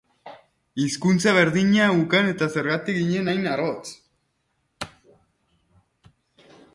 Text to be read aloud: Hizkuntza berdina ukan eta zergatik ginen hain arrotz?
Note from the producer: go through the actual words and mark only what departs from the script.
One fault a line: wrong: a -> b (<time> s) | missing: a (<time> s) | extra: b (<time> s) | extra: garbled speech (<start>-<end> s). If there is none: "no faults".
no faults